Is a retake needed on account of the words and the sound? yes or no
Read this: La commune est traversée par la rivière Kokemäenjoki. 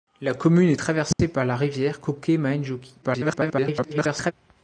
yes